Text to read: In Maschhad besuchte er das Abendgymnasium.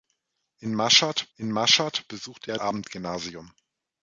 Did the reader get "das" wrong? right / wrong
wrong